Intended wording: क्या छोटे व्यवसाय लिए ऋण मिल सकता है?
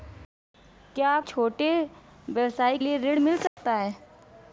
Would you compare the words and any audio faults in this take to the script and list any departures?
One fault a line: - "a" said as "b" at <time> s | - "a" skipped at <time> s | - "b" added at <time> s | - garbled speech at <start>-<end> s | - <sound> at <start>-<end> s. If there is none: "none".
- dropout at 3.5-3.6 s